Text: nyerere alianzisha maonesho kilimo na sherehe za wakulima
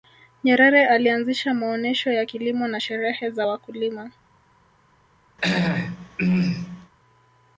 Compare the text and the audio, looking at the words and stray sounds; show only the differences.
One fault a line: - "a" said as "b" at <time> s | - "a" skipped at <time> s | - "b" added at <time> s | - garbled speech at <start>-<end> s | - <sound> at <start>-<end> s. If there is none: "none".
- "ya" added at 2.1 s
- throat clearing at 5.4-6.9 s